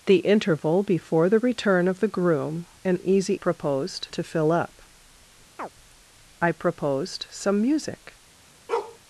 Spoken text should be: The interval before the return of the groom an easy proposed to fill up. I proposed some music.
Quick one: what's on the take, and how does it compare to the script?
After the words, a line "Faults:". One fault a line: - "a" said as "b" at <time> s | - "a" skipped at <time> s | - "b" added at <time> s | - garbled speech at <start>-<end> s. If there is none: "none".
The interval before the return of the groom an easy proposed to fill up. I proposed some music.
Faults:
none